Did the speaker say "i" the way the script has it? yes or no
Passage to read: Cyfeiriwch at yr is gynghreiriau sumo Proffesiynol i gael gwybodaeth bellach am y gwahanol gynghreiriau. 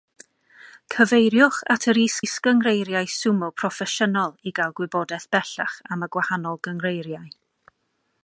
yes